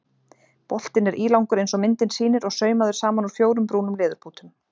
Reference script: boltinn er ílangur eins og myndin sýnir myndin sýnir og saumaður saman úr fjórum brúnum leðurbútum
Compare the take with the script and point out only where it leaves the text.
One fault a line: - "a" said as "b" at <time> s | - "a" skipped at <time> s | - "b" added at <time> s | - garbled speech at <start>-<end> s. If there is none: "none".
- "myndin sýnir" skipped at 2.5 s